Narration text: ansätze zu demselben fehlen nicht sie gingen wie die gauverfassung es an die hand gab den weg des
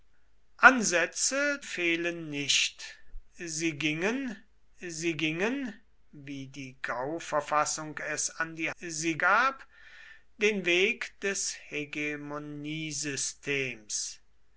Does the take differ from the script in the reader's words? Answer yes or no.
yes